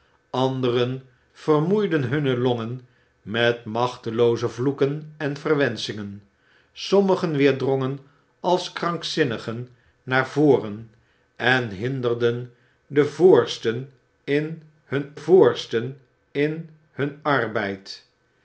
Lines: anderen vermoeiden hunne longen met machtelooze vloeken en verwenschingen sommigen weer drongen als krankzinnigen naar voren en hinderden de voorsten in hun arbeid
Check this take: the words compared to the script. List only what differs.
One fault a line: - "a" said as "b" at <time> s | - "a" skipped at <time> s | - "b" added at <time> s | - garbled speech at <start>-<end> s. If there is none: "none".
- "voorsten in hun" added at 15.1 s